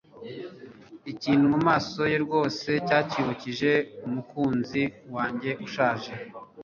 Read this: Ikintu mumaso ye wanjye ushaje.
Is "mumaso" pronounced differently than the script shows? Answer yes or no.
no